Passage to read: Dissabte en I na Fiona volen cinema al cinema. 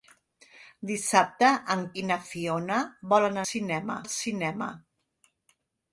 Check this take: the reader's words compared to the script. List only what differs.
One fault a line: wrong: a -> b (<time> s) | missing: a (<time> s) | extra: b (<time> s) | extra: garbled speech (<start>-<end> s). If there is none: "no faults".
no faults